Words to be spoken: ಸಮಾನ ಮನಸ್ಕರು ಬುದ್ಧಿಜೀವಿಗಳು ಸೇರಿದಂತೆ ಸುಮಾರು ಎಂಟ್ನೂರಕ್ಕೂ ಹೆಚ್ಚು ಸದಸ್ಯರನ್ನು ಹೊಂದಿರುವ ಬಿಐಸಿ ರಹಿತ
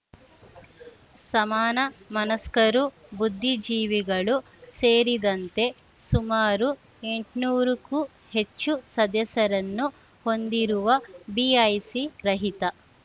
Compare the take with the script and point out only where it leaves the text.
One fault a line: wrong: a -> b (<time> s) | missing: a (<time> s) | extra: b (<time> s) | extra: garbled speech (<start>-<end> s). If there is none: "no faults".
no faults